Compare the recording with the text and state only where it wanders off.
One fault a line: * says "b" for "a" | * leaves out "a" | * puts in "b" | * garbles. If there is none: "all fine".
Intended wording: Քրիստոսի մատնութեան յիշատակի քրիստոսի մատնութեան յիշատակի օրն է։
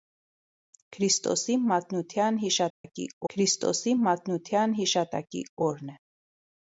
all fine